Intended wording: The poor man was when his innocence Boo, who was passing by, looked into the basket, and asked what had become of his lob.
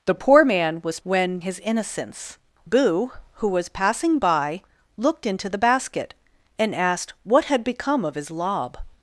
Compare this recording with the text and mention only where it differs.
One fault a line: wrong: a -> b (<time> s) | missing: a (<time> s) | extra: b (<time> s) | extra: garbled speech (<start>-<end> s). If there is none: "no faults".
no faults